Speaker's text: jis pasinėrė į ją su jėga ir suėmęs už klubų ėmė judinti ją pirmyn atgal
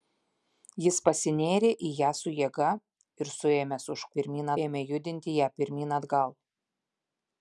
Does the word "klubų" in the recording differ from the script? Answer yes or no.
yes